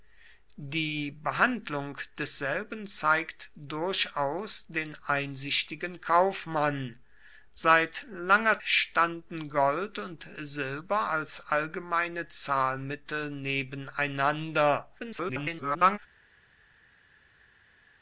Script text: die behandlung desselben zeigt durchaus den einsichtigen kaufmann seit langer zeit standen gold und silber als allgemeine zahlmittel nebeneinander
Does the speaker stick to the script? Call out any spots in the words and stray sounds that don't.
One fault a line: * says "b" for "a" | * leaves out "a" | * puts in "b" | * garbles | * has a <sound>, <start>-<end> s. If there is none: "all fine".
* leaves out "zeit"
* garbles